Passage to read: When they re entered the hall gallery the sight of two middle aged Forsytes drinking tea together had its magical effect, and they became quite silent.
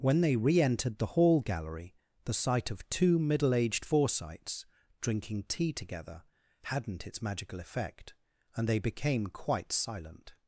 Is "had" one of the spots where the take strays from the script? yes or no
yes